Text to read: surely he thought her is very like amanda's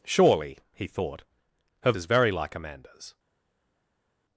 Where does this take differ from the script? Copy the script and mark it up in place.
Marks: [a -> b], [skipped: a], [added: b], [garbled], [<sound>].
surely he thought her is very like amanda's